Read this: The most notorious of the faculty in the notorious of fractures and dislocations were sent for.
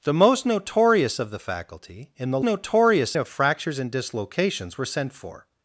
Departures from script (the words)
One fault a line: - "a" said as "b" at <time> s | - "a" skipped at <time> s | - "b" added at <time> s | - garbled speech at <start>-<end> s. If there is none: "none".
none